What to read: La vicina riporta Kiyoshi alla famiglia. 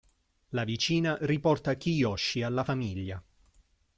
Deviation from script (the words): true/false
false